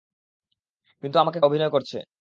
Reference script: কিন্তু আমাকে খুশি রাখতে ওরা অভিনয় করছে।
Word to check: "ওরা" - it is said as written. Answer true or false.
false